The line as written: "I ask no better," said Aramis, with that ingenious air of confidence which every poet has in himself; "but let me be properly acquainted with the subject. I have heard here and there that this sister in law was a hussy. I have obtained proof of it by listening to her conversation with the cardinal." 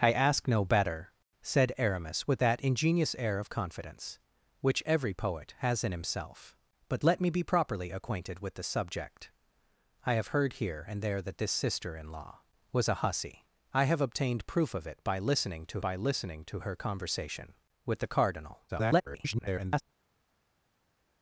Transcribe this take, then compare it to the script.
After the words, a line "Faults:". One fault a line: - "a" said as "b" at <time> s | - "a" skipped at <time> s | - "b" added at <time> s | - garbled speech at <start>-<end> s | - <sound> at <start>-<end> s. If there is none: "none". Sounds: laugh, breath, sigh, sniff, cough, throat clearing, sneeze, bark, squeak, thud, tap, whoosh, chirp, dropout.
"I ask no better," said Aramis, with that ingenious air of confidence which every poet has in himself; "but let me be properly acquainted with the subject. I have heard here and there that this sister in law was a hussy. I have obtained proof of it by listening to by listening to her conversation with the cardinal." [garbled]
Faults:
- "by listening to" added at 15.8 s
- garbled speech at 18.7-19.8 s